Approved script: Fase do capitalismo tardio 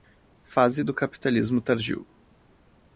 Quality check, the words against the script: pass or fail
pass